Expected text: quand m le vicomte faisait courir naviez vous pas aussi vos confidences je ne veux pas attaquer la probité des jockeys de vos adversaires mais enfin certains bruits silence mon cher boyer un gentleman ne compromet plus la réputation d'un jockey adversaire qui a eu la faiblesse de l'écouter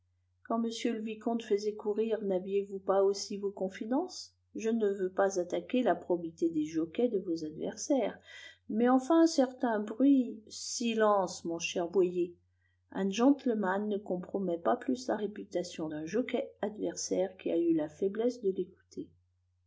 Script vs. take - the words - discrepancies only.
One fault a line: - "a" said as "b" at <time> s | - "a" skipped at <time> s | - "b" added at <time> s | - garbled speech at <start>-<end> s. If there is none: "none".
- "pas" added at 14.6 s